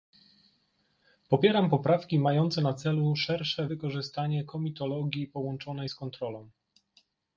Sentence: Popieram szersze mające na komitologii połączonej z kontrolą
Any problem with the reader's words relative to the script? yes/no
yes